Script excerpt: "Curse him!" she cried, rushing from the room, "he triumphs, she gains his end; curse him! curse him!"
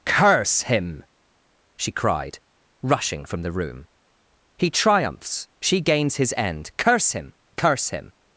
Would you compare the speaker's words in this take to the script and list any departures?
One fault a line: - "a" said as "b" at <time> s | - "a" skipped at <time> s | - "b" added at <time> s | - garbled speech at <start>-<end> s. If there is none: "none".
none